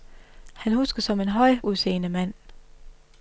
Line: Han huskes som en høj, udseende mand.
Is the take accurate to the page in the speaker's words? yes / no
yes